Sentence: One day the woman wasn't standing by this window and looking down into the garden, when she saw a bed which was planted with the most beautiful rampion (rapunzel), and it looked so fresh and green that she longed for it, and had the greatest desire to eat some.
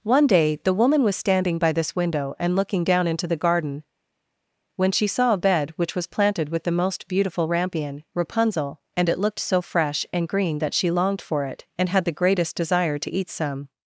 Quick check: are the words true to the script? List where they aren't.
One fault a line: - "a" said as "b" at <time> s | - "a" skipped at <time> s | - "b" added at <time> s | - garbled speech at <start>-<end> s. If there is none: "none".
- "wasn't" said as "was" at 1.0 s